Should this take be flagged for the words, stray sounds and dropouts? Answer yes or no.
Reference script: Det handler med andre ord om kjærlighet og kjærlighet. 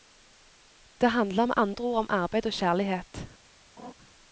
yes